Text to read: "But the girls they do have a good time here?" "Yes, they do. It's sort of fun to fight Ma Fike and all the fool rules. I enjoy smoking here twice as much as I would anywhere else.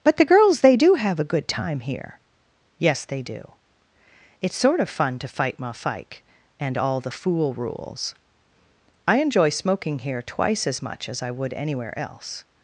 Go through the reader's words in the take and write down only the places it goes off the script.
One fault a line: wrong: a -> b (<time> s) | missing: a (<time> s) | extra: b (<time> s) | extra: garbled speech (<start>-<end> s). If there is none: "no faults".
no faults